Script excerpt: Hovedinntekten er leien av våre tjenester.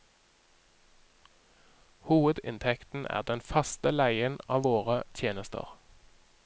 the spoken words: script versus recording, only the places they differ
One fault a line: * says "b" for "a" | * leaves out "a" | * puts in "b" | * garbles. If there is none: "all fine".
* puts in "den faste"